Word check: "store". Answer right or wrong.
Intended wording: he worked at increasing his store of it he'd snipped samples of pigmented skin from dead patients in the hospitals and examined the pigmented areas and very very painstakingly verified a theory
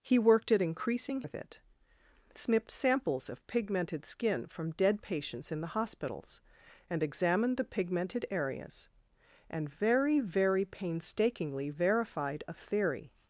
wrong